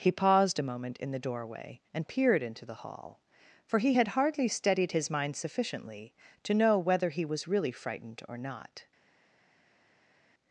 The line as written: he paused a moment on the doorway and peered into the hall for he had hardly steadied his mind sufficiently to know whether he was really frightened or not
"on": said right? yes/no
no